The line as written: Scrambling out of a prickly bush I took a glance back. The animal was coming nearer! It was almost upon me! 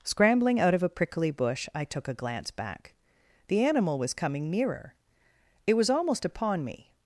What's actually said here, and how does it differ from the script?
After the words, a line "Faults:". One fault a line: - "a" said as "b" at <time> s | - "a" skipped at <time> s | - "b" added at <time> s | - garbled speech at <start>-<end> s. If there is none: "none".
Scrambling out of a prickly bush I took a glance back. The animal was coming nearer! It was almost upon me!
Faults:
none